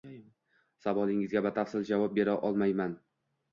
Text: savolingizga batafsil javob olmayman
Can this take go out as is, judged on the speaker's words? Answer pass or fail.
fail